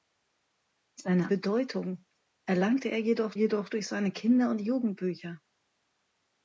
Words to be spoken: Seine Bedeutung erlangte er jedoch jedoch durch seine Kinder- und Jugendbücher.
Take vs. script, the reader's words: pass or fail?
pass